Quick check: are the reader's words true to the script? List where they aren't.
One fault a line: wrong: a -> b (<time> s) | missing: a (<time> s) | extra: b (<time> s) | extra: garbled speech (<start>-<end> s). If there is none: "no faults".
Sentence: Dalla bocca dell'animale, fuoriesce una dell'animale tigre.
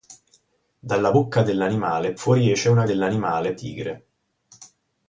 no faults